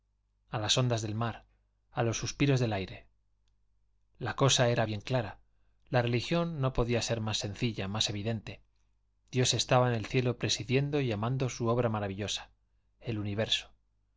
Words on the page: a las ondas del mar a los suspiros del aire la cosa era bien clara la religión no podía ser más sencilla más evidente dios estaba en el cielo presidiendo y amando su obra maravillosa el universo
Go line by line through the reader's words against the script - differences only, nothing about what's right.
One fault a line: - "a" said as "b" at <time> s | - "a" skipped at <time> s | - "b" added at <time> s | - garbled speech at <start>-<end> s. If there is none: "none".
none